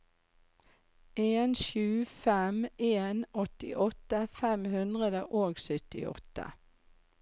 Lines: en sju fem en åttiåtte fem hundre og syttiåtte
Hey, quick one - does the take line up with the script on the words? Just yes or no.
yes